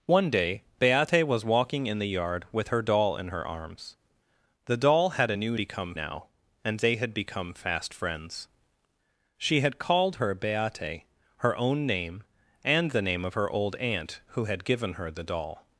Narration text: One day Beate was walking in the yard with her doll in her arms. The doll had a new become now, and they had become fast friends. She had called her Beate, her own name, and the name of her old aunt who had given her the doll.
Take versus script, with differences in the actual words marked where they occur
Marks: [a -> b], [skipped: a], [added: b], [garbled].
One day Beate was walking in the yard with her doll in her arms. The doll had a new become now, and they had become fast friends. She had called her Beate, her own name, and the name of her old aunt who had given her the doll.